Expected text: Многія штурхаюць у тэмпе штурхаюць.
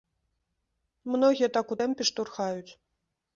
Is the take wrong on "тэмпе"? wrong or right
right